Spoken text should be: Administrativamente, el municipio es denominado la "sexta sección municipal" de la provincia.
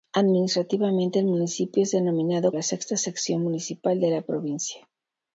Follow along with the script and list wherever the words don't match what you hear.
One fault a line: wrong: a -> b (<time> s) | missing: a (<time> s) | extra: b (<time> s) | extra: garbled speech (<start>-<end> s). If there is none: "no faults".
no faults